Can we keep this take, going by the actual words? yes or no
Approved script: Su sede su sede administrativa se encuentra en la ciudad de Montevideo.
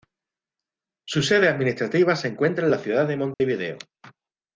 no